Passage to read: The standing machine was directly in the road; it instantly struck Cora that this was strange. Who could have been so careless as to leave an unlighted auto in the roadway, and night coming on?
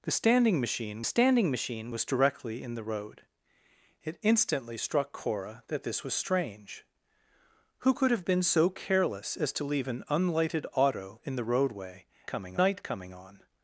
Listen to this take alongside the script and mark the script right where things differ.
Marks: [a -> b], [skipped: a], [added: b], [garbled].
The standing machine [added: standing machine] was directly in the road; it instantly struck Cora that this was strange. Who could have been so careless as to leave an unlighted auto in the roadway, [and -> coming] night coming on?